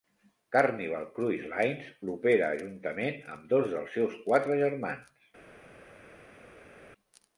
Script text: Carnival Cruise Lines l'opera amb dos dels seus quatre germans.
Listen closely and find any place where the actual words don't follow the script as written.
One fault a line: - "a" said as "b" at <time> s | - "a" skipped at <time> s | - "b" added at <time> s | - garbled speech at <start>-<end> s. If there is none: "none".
- "juntament" added at 2.6 s